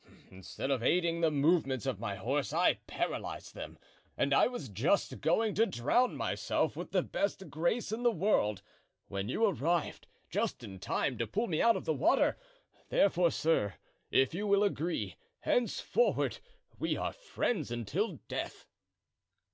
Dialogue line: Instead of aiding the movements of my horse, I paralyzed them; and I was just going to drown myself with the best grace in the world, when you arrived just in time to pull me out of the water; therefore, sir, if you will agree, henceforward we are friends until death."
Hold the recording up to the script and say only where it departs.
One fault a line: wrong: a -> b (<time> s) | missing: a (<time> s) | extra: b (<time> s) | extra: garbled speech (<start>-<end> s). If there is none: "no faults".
no faults